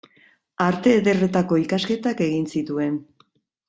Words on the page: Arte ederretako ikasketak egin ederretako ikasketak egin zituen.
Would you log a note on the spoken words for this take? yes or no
yes